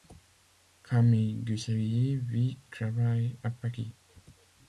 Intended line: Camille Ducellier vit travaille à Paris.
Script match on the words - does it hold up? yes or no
yes